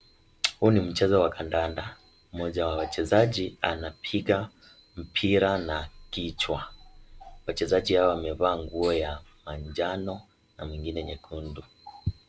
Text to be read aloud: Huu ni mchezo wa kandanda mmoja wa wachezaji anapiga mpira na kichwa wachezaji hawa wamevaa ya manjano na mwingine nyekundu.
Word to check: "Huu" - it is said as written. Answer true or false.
true